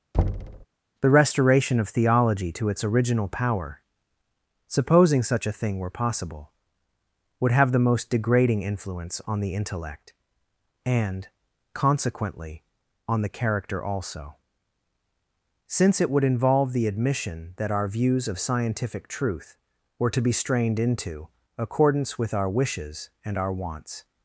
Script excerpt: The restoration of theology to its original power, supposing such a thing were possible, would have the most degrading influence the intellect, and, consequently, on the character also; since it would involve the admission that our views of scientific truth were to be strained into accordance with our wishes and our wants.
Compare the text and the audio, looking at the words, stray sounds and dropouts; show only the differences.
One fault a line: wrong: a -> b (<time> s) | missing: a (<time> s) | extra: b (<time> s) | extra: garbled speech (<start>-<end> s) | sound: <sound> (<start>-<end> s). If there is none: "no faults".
sound: thud (0.1-0.7 s)
extra: on (9.3 s)